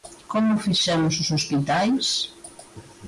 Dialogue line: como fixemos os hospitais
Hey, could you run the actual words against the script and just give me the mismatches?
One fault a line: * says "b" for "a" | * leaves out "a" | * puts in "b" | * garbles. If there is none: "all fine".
all fine